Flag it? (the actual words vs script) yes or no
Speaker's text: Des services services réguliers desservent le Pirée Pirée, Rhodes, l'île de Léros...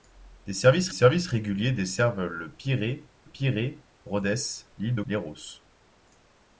no